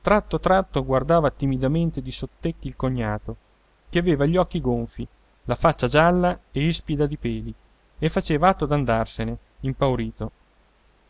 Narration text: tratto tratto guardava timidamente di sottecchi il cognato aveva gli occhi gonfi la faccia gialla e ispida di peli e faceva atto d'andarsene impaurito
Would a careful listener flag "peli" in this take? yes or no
no